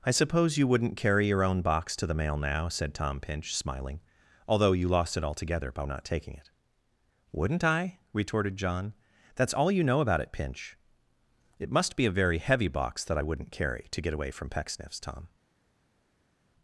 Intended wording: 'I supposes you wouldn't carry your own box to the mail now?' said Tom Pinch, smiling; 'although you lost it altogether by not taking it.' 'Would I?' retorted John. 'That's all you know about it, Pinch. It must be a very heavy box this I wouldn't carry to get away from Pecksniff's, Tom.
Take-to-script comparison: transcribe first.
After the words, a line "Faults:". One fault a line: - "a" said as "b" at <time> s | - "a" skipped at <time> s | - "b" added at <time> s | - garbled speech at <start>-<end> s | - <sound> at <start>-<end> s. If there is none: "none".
'I suppose you wouldn't carry your own box to the mail now?' said Tom Pinch, smiling; 'although you lost it altogether by not taking it.' 'Wouldn't I?' retorted John. 'That's all you know about it, Pinch. It must be a very heavy box that I wouldn't carry to get away from Pecksniff's, Tom.
Faults:
- "supposes" said as "suppose" at 0.1 s
- "Would" said as "Wouldn't" at 7.3 s
- "this" said as "that" at 13.0 s